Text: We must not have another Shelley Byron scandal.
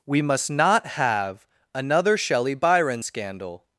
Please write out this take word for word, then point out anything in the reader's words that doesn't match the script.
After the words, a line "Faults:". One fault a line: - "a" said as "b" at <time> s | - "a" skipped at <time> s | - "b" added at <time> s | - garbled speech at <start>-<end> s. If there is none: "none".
We must not have another Shelley Byron scandal.
Faults:
none